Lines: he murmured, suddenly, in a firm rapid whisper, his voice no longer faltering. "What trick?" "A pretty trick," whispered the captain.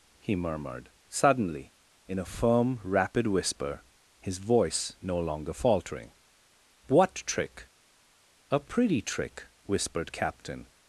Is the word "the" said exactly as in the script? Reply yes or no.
no